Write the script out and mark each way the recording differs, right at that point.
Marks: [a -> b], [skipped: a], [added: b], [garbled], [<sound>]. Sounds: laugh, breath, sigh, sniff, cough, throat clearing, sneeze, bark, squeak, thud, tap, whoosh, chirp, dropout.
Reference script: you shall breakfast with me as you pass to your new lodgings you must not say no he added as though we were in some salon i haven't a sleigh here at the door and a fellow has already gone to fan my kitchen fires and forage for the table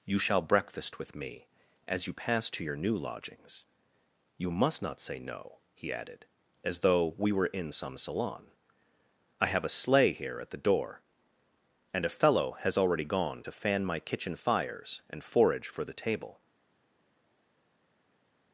you shall breakfast with me as you pass to your new lodgings you must not say no he added as though we were in some salon i [haven't -> have] a sleigh here at the door and a fellow has already gone to fan my kitchen fires and forage for the table